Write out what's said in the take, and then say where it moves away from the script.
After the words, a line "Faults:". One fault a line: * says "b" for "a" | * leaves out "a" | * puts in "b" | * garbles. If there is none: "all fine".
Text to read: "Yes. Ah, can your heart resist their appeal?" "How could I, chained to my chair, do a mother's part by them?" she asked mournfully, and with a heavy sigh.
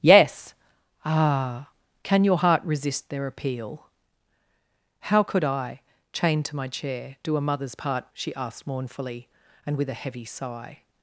"Yes. Ah, can your heart resist their appeal?" "How could I, chained to my chair, do a mother's part?" she asked mournfully, and with a heavy sigh.
Faults:
* leaves out "by them"